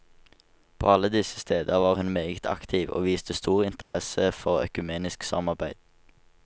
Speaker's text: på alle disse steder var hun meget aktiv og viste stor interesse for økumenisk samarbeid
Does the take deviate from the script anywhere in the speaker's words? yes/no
no